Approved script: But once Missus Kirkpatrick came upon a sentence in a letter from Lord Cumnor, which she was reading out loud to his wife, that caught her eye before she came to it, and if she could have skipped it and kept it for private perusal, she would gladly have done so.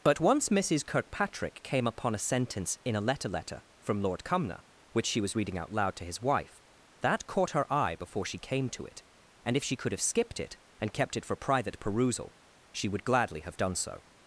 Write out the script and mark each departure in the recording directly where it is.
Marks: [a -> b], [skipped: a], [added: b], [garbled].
But once Missus Kirkpatrick came upon a sentence in a letter [added: letter] from Lord Cumnor, which she was reading out loud to his wife, that caught her eye before she came to it, and if she could have skipped it and kept it for private perusal, she would gladly have done so.